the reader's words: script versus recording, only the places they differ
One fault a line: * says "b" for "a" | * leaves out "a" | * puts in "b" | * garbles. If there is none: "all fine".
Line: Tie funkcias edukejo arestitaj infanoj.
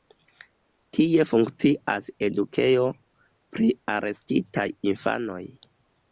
* puts in "pri"